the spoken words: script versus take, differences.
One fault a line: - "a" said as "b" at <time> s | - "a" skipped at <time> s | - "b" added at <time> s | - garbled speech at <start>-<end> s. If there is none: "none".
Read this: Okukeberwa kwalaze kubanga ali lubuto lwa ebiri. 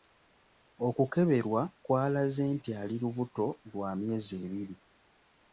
- "kubanga" said as "nti" at 2.6 s
- "myezi" added at 4.0 s